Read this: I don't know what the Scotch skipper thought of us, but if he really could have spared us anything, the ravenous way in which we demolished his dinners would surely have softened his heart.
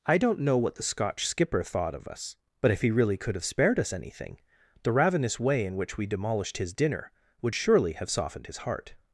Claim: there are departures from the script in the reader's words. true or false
true